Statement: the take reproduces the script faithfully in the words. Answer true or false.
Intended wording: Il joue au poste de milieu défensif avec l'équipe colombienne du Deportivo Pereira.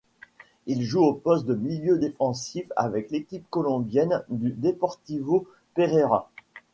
true